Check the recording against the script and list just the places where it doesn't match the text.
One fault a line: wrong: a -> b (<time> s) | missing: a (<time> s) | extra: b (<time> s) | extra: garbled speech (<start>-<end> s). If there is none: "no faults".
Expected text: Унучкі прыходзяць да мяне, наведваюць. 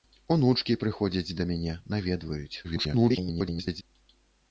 extra: garbled speech (2.6-3.8 s)